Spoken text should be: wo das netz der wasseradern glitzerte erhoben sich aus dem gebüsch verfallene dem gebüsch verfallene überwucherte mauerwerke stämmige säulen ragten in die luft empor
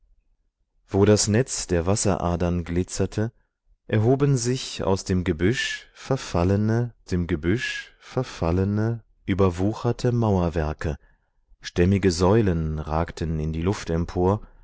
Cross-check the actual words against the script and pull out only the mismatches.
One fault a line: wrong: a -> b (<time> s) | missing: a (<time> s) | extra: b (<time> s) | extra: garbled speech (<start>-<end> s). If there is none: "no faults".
no faults